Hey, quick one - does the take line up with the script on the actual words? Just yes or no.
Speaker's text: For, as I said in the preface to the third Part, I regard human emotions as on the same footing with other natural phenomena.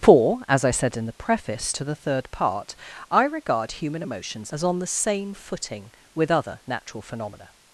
yes